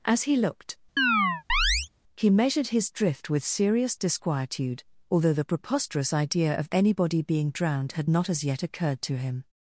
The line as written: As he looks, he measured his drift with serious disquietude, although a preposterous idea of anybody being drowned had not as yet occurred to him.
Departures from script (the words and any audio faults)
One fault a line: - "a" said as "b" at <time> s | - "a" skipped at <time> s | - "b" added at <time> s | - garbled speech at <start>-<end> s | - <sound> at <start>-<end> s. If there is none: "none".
- "looks" said as "looked" at 0.3 s
- chirp at 1.0-1.9 s
- "a" said as "the" at 5.3 s